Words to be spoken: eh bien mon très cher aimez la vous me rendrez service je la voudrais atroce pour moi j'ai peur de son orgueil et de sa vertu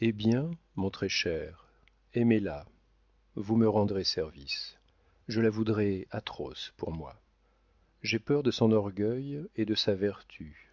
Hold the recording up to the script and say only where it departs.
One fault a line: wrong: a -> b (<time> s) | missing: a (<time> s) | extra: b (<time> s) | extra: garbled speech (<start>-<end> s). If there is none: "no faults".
no faults